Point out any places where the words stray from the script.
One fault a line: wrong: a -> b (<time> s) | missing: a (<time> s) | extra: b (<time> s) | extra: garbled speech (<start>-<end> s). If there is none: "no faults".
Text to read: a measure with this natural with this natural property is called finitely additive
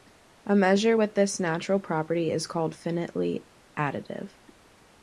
missing: with this natural (1.8 s)